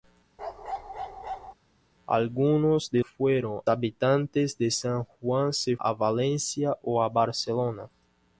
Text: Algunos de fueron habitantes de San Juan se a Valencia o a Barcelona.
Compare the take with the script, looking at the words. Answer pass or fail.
pass